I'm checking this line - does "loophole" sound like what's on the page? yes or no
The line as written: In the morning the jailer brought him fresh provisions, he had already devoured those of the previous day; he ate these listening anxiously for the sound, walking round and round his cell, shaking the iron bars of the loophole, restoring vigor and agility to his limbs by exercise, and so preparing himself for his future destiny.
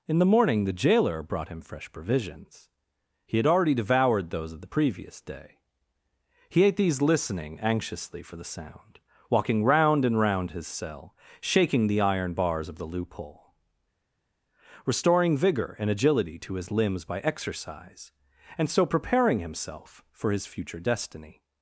yes